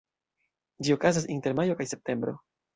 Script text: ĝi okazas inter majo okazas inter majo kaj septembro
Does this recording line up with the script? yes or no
no